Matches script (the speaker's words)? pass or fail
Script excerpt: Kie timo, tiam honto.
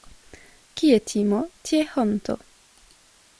fail